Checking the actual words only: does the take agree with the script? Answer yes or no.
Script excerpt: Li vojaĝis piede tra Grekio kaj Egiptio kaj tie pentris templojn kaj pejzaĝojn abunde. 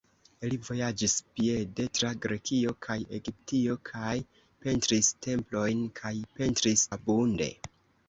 no